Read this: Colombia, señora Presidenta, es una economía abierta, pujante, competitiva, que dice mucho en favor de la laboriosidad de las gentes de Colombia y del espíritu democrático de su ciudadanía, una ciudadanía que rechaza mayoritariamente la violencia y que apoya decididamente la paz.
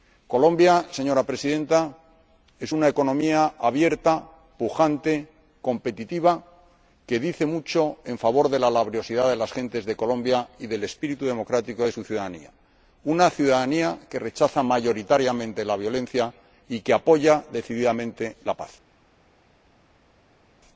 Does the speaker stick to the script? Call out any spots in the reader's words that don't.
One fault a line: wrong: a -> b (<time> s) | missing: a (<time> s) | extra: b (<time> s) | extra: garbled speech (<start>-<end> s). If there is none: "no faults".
no faults